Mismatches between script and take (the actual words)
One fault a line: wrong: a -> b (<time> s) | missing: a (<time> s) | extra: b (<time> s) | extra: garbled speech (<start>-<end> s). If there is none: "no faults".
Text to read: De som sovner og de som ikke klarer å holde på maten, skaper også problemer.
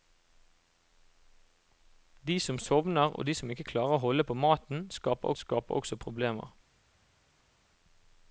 extra: skaper (5.4 s)